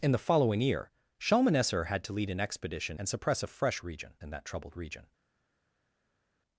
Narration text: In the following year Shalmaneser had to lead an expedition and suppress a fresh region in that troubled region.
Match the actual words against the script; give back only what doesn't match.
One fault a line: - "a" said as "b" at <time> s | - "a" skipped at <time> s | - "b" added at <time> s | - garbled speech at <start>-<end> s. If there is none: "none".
none